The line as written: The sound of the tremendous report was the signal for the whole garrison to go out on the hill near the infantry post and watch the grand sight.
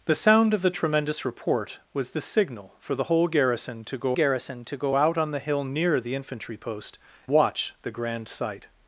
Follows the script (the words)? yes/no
no